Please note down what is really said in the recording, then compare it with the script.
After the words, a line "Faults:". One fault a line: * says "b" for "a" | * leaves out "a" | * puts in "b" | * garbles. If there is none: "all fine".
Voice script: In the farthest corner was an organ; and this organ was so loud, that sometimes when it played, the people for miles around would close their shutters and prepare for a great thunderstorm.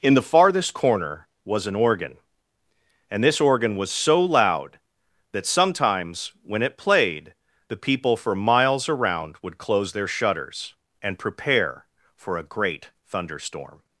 In the farthest corner was an organ; and this organ was so loud, that sometimes when it played, the people for miles around would close their shutters and prepare for a great thunderstorm.
Faults:
all fine